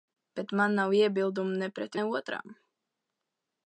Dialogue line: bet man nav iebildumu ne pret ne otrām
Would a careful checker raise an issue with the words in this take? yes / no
no